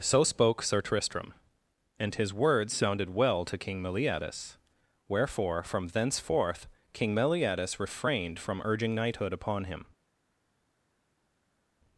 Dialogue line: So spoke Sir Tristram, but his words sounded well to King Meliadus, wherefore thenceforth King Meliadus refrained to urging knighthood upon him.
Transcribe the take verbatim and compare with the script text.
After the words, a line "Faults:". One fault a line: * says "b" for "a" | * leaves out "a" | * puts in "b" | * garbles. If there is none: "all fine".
So spoke Sir Tristram, and his words sounded well to King Meliadus, wherefore from thenceforth King Meliadus refrained from urging knighthood upon him.
Faults:
* says "and" for "but"
* puts in "from"
* says "from" for "to"